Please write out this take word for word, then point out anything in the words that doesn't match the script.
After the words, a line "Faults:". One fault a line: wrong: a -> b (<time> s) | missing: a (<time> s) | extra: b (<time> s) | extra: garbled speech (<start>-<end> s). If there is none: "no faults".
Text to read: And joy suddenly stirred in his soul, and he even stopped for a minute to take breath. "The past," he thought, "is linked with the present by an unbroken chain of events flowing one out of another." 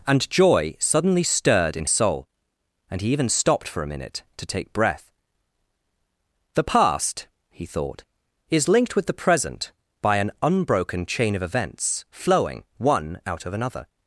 And joy suddenly stirred in soul, and he even stopped for a minute to take breath. "The past," he thought, "is linked with the present by an unbroken chain of events flowing one out of another."
Faults:
missing: his (1.9 s)